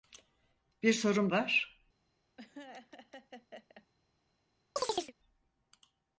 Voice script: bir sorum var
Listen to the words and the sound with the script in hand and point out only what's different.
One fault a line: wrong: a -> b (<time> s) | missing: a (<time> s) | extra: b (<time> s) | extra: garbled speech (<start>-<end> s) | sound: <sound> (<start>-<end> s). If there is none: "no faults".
sound: laugh (2.4-3.9 s)
sound: chirp (4.8-5.1 s)